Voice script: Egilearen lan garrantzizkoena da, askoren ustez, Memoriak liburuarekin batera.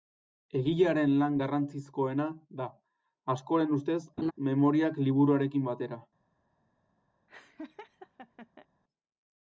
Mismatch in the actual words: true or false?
false